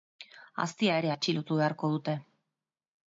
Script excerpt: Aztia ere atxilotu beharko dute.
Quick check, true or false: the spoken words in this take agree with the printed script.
true